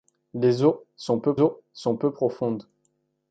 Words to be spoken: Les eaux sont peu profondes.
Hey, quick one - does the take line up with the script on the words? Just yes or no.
no